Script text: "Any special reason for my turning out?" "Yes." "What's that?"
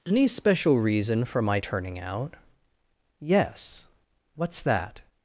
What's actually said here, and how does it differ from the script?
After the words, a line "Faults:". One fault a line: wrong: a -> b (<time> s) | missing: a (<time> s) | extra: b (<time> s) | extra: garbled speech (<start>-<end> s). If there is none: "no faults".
"Any special reason for my turning out?" "Yes." "What's that?"
Faults:
no faults